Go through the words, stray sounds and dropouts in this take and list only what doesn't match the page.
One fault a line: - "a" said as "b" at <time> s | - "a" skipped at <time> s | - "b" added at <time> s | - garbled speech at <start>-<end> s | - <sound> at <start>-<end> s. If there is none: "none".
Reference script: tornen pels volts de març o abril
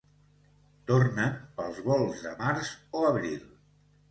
none